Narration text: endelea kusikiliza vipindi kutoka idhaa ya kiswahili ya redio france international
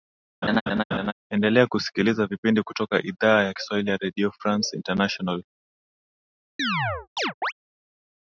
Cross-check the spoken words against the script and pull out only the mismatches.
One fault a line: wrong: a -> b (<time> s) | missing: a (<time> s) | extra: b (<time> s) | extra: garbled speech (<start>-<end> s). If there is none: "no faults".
no faults